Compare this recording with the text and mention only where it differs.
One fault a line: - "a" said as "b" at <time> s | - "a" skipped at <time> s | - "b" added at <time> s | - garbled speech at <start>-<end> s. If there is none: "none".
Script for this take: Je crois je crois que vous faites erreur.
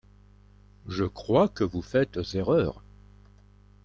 - "je crois" skipped at 1.5 s